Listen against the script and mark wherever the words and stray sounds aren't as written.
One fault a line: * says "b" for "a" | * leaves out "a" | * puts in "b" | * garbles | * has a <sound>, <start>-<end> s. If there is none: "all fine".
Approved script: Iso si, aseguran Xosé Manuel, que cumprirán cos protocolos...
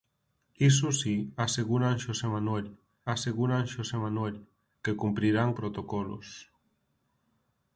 * puts in "aseguran Xosé Manuel"
* leaves out "cos"